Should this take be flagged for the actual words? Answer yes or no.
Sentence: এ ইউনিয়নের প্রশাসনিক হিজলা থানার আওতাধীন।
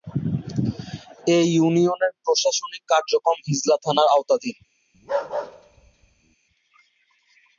yes